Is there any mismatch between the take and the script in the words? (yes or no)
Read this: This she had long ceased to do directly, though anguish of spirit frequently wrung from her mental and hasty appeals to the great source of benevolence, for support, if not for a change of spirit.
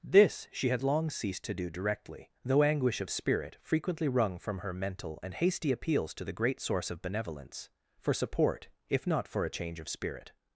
no